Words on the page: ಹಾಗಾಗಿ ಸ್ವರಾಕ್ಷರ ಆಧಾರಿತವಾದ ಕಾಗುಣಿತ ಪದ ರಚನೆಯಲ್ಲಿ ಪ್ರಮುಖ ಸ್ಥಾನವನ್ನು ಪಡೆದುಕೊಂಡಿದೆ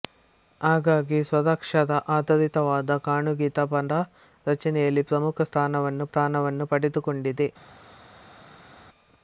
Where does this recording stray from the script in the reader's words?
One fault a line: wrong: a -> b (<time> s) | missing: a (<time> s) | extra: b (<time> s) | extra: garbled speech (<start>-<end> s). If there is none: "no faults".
extra: ಸ್ಥಾನವನ್ನು (6.1 s)